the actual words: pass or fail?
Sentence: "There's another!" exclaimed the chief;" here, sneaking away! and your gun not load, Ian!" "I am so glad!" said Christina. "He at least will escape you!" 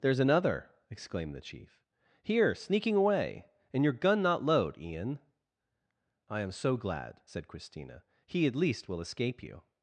pass